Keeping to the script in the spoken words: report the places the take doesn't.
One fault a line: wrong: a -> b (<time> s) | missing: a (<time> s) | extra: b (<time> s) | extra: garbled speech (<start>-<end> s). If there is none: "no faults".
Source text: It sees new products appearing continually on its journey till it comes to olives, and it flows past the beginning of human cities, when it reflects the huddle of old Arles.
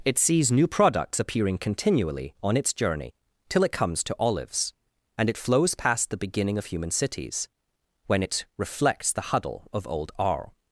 no faults